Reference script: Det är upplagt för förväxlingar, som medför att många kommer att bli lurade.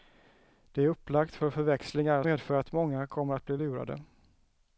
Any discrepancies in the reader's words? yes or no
yes